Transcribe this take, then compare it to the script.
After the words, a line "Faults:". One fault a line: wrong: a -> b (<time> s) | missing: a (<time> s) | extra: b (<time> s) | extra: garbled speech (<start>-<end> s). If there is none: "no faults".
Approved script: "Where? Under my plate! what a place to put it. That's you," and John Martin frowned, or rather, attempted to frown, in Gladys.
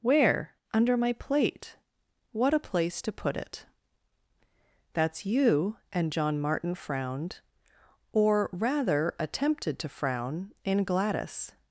"Where? Under my plate! what a place to put it. That's you," and John Martin frowned, or rather, attempted to frown, in Gladys.
Faults:
no faults